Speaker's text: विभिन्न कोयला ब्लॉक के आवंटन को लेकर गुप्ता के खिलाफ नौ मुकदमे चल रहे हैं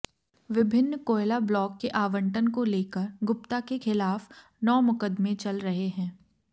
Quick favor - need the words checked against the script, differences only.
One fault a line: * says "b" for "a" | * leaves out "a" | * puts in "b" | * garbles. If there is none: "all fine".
all fine